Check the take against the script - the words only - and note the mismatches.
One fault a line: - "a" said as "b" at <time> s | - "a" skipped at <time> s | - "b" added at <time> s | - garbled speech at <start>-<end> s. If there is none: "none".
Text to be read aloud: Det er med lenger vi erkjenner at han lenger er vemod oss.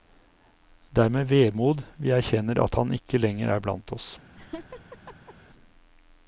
- "lenger" said as "vemod" at 1.3 s
- "ikke" added at 3.0 s
- "vemod" said as "blant" at 3.7 s